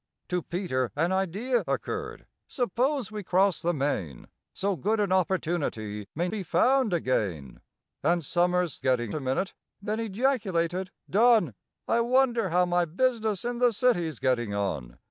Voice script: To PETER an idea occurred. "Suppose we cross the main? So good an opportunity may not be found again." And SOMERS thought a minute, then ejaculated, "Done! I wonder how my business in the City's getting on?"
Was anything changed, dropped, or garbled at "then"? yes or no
no